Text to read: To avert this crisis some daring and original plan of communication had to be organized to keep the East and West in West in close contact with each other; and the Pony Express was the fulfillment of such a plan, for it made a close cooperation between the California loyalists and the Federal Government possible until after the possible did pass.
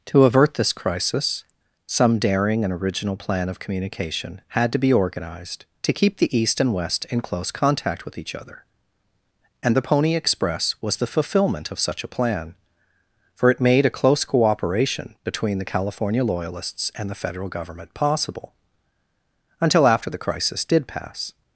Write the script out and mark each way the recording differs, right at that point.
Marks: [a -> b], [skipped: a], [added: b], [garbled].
To avert this crisis some daring and original plan of communication had to be organized to keep the East and West in [skipped: West in] close contact with each other; and the Pony Express was the fulfillment of such a plan, for it made a close cooperation between the California loyalists and the Federal Government possible until after the [possible -> crisis] did pass.